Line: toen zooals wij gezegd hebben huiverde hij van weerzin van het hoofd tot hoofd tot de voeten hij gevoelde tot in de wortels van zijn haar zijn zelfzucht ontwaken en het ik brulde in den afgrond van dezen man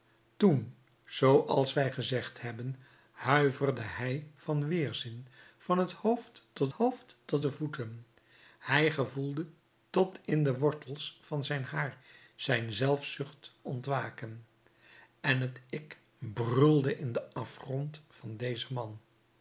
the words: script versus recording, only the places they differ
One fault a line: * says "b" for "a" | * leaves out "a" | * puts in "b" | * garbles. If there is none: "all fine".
all fine